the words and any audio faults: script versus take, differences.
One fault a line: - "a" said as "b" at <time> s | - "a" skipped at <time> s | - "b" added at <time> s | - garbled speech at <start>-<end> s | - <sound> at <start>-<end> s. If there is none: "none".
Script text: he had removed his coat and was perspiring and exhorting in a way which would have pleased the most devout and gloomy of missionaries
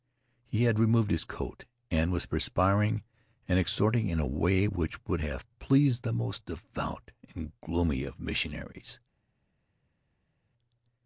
none